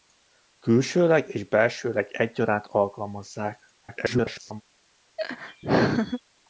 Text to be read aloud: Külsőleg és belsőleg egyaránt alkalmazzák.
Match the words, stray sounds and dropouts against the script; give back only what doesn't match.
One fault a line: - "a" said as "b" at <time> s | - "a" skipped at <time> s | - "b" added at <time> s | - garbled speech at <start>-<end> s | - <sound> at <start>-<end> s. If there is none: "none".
- garbled speech at 3.8-4.6 s
- laugh at 5.2-6.2 s